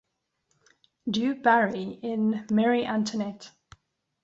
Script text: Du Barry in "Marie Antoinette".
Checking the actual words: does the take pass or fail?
pass